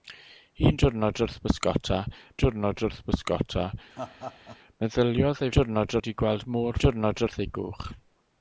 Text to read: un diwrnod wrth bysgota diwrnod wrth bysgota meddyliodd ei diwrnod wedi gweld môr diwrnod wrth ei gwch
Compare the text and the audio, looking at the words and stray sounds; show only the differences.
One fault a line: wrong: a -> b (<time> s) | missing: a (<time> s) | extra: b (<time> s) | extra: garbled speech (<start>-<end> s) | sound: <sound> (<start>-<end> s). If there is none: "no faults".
sound: laugh (3.9-4.6 s)